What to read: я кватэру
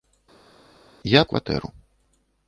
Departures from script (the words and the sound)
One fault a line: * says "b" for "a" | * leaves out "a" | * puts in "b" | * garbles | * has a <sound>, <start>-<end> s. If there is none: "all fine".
all fine